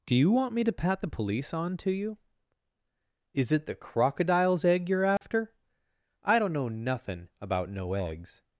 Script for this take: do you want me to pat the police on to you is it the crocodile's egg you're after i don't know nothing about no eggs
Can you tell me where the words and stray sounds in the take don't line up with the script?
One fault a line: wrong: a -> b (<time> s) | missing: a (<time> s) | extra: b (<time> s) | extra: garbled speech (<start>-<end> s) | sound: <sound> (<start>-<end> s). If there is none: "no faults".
sound: dropout (5.2-5.2 s)